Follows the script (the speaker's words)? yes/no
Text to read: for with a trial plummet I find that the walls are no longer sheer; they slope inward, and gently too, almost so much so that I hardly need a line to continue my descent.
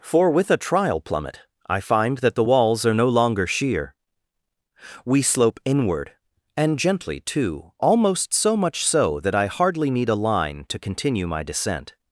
no